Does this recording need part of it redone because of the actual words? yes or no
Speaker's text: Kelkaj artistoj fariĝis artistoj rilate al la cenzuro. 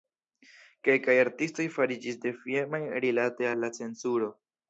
yes